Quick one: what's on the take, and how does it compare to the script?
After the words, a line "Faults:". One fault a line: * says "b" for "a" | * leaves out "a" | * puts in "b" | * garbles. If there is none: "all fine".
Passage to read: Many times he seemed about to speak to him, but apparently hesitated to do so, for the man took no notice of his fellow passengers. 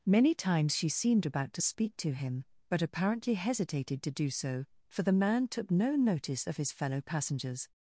Many times she seemed about to speak to him, but apparently hesitated to do so, for the man took no notice of his fellow passengers.
Faults:
* says "she" for "he"